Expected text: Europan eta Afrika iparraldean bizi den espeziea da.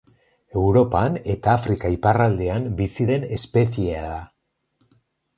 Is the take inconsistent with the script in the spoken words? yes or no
no